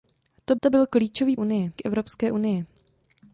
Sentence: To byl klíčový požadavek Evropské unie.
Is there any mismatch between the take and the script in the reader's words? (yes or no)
yes